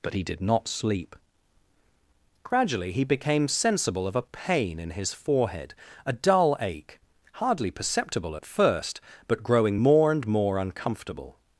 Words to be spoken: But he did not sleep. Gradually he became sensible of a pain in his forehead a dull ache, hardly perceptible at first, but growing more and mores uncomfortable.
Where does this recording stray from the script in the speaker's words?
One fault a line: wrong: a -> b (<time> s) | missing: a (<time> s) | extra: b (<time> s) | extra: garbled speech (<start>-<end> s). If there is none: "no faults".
wrong: mores -> more (10.3 s)